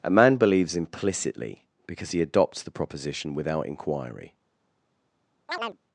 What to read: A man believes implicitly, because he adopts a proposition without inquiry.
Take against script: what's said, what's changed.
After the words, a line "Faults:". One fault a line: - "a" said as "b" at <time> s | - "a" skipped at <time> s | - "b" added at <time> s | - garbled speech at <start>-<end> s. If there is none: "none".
A man believes implicitly, because he adopts the proposition without inquiry.
Faults:
- "a" said as "the" at 2.6 s